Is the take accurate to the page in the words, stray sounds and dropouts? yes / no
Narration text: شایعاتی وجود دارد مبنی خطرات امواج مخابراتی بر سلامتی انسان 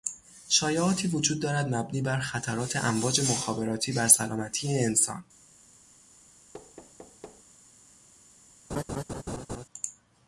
no